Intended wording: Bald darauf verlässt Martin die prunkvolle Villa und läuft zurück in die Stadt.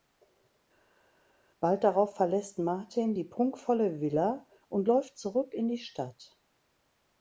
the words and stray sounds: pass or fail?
pass